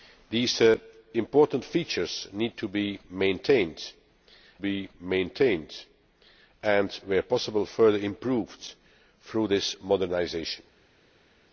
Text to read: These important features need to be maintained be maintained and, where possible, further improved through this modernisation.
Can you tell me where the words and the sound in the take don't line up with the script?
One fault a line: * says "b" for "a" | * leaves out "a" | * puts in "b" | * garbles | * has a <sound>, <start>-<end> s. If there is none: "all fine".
all fine